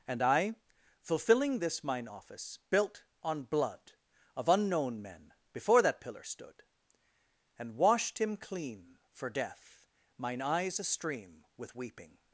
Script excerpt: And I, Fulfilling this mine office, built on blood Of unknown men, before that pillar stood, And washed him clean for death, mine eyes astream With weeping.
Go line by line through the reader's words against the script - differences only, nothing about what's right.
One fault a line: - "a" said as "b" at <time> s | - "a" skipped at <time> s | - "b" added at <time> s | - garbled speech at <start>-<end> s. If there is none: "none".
none